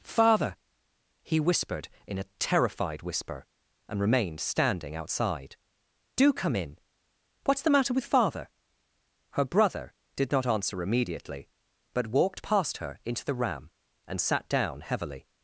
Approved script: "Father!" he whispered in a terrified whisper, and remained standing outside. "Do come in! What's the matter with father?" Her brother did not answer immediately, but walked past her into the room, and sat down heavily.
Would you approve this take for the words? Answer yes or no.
no